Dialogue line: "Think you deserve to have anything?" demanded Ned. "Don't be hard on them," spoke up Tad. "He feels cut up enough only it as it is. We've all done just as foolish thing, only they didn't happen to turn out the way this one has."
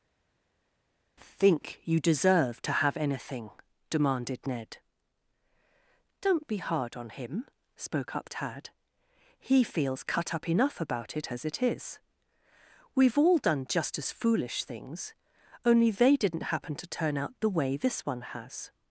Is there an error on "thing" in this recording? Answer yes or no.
yes